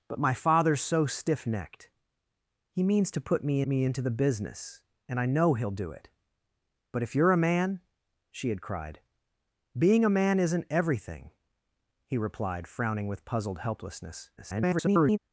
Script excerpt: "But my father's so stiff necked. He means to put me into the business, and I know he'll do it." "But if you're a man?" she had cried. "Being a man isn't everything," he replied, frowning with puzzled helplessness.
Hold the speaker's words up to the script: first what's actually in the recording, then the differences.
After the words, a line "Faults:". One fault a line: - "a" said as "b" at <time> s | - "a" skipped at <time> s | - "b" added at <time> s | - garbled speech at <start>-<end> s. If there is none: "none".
"But my father's so stiff necked. He means to put me me into the business, and I know he'll do it." "But if you're a man?" she had cried. "Being a man isn't everything," he replied, frowning with puzzled helplessness. [garbled]
Faults:
- "me" added at 3.7 s
- garbled speech at 14.4-15.2 s